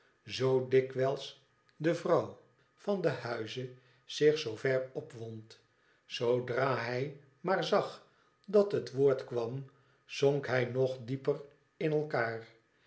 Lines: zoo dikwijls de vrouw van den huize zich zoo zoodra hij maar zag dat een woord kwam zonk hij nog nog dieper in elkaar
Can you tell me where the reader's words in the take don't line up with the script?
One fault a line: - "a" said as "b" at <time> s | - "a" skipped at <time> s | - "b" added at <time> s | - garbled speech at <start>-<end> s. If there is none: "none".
- "ver opwond" added at 4.5 s
- "een" said as "het" at 8.7 s
- "nog" skipped at 11.0 s